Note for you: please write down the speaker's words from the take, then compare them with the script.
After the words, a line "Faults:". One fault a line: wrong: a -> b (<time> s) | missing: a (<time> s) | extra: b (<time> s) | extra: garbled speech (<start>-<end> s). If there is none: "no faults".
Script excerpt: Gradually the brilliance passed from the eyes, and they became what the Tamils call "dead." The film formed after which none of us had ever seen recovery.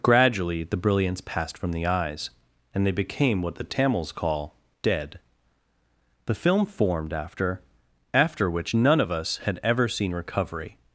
Gradually the brilliance passed from the eyes, and they became what the Tamils call "dead." The film formed after after which none of us had ever seen recovery.
Faults:
extra: after (8.1 s)